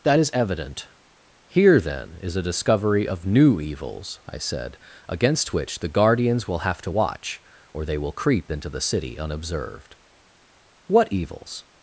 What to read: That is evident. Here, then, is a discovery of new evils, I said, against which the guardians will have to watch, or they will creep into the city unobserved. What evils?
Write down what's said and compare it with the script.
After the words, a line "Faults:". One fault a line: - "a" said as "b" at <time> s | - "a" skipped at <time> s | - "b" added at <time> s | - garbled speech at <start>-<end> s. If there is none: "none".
That is evident. Here, then, is a discovery of new evils, I said, against which the guardians will have to watch, or they will creep into the city unobserved. What evils?
Faults:
none